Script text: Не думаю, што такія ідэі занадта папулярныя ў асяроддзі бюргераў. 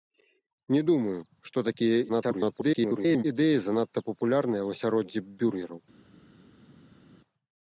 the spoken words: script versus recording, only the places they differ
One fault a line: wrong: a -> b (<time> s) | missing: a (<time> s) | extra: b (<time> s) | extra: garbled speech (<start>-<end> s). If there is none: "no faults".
extra: garbled speech (2.1-3.2 s)